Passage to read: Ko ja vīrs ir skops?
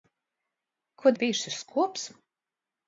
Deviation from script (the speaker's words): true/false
false